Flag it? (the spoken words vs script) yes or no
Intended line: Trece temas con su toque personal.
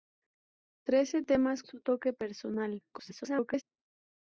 yes